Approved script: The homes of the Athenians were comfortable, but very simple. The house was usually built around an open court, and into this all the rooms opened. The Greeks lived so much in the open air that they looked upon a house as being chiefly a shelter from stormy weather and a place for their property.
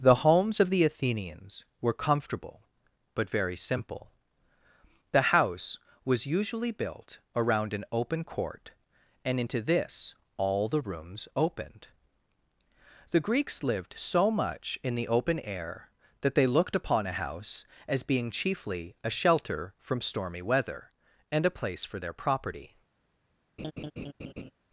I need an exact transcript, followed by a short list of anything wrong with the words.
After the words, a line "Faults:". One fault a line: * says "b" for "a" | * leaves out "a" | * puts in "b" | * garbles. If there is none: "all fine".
The homes of the Athenians were comfortable, but very simple. The house was usually built around an open court, and into this all the rooms opened. The Greeks lived so much in the open air that they looked upon a house as being chiefly a shelter from stormy weather and a place for their property.
Faults:
all fine